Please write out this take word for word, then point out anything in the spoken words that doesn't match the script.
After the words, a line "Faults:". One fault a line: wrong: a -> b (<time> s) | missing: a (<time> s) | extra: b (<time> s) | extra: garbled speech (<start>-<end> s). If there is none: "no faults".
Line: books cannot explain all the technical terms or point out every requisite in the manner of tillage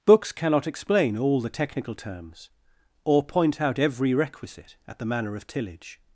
books cannot explain all the technical terms or point out every requisite at the manner of tillage
Faults:
wrong: in -> at (4.9 s)